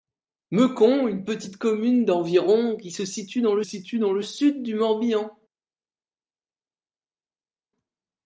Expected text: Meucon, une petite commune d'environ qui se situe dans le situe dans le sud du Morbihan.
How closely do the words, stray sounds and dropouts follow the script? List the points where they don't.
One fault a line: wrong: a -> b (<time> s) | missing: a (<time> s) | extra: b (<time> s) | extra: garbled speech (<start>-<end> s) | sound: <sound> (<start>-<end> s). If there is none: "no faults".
no faults